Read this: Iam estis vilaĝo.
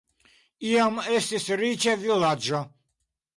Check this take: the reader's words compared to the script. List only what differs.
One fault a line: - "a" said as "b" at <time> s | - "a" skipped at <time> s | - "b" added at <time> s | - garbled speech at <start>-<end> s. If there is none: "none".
- "riĉa" added at 1.6 s